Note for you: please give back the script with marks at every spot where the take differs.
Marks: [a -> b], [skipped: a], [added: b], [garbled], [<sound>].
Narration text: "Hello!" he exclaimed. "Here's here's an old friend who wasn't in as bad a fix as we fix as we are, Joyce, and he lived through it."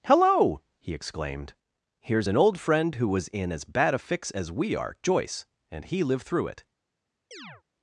"Hello!" he exclaimed. "Here's [skipped: here's] an old friend who [wasn't -> was] in as bad a fix as we [skipped: fix as we] are, Joyce, and he lived through it." [chirp]